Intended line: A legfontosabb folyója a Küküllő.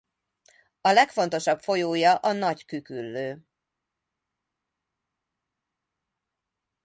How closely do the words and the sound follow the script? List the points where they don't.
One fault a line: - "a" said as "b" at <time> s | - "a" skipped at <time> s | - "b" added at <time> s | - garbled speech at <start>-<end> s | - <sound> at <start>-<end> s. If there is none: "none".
- "Nagy" added at 2.3 s